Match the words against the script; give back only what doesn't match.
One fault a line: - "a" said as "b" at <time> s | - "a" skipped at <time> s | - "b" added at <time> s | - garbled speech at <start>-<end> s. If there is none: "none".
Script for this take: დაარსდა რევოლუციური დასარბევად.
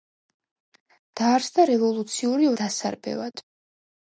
none